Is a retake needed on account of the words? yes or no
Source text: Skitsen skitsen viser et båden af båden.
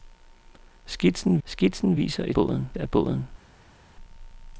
no